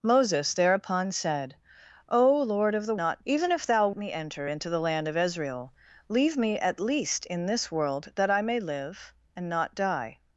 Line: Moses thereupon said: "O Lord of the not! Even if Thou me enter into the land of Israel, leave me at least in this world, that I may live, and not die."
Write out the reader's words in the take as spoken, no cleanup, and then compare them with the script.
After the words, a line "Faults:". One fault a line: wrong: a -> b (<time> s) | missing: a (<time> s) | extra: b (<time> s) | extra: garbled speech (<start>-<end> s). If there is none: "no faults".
Moses thereupon said: "O Lord of the not! Even if Thou me enter into the land of Israel, leave me at least in this world, that I may live, and not die."
Faults:
no faults